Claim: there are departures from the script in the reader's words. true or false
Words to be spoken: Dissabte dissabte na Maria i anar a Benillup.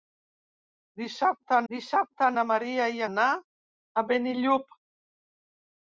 false